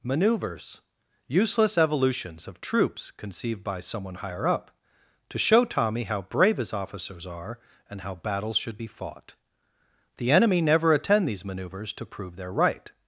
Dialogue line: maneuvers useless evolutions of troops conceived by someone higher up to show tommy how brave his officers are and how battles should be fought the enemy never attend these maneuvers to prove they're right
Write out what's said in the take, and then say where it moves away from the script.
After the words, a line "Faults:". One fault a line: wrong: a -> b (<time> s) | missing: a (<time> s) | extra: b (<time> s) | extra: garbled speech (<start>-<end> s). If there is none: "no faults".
maneuvers useless evolutions of troops conceived by someone higher up to show tommy how brave his officers are and how battles should be fought the enemy never attend these maneuvers to prove they're right
Faults:
no faults